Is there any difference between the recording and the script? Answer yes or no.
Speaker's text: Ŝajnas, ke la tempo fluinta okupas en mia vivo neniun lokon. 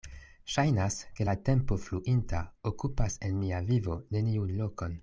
no